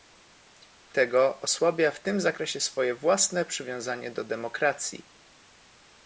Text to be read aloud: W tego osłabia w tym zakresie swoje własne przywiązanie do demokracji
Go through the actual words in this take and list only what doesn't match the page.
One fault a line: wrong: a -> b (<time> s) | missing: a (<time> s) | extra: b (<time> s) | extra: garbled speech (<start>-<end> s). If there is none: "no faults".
no faults